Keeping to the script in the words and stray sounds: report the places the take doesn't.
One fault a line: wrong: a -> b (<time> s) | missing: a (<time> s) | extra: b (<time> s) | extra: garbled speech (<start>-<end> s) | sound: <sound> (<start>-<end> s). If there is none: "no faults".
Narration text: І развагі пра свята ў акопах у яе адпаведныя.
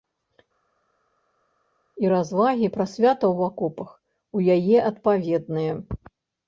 no faults